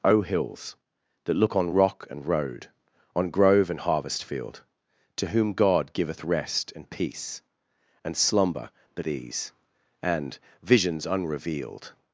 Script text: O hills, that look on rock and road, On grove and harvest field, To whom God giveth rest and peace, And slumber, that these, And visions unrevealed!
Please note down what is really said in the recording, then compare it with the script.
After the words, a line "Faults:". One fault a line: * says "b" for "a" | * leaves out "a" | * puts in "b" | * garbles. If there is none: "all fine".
O hills, that look on rock and road, On grove and harvest field, To whom God giveth rest and peace, And slumber, that these, And visions unrevealed!
Faults:
all fine